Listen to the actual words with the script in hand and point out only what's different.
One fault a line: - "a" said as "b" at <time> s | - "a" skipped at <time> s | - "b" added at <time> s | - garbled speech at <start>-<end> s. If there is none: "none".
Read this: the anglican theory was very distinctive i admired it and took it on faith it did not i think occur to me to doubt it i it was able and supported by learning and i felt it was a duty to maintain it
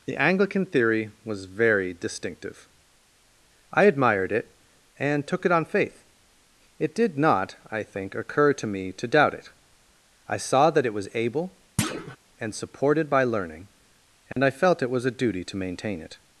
- "saw that" added at 10.4 s